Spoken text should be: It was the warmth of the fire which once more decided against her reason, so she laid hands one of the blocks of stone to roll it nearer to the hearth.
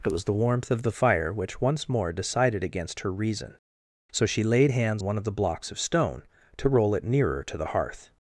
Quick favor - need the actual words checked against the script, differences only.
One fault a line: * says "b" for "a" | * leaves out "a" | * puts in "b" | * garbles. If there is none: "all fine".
all fine